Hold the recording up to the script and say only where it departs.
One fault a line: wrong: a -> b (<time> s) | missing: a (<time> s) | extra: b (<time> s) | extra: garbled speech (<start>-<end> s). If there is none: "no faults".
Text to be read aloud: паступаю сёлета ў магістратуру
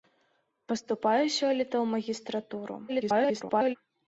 extra: garbled speech (2.9-3.8 s)